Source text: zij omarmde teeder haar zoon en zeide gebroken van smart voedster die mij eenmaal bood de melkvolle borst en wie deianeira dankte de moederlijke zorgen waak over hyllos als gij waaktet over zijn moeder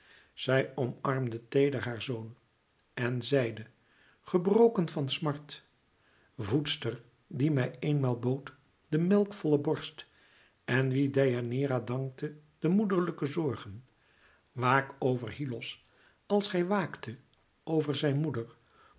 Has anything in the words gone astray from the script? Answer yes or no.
no